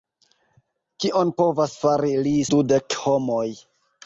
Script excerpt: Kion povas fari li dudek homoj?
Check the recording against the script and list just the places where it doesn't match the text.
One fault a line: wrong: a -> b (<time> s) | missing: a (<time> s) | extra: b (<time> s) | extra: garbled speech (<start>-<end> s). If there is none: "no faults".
no faults